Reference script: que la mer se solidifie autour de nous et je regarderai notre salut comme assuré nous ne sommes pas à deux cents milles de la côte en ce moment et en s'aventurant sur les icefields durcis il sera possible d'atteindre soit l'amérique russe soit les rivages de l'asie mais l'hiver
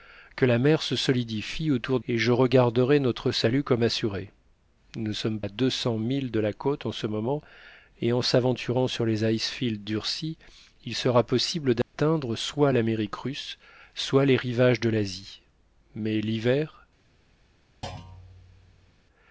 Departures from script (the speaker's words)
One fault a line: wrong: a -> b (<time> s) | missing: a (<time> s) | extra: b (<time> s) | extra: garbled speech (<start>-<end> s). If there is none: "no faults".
missing: de nous (2.0 s)
missing: pas (5.4 s)